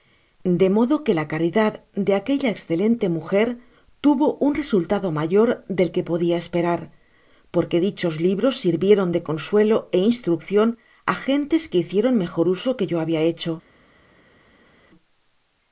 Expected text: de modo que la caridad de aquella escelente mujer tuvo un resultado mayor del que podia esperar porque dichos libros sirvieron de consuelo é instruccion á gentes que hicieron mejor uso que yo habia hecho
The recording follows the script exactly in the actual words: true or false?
true